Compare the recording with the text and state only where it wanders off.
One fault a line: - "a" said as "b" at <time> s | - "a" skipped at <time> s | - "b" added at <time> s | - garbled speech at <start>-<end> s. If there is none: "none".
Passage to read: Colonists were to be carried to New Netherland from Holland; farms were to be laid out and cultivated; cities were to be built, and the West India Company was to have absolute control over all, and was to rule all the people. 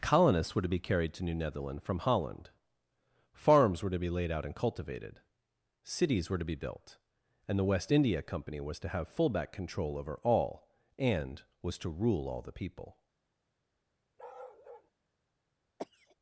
- "absolute" said as "fullback" at 9.1 s